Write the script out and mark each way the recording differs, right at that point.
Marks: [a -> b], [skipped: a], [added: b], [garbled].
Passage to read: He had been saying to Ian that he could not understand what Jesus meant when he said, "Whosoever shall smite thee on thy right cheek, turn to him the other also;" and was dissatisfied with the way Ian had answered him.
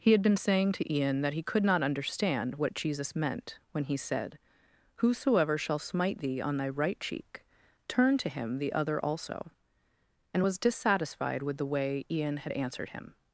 He had been saying to Ian that he could not understand what Jesus meant when he said, "Whosoever shall smite thee on thy right cheek, turn to him the other also;" and was dissatisfied with the way Ian had answered him.